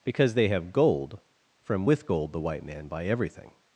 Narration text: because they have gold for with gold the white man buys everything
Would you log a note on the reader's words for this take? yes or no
yes